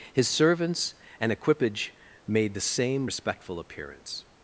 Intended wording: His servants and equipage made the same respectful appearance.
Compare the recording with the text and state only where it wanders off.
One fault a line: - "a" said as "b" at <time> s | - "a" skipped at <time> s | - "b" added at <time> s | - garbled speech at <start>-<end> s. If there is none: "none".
none